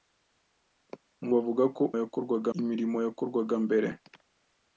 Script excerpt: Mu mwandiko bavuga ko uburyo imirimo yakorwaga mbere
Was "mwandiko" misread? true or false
true